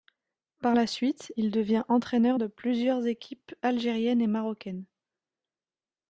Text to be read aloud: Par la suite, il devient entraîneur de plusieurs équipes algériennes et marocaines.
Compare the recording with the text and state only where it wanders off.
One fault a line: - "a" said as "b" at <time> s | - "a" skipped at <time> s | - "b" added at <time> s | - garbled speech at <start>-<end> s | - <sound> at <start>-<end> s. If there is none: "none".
none